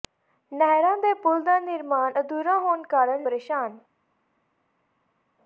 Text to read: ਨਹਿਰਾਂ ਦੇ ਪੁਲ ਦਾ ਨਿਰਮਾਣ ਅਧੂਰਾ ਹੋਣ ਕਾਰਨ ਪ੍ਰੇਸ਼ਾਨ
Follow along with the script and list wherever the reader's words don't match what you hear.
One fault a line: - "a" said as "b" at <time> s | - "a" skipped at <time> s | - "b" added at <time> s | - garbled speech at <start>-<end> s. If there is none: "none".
none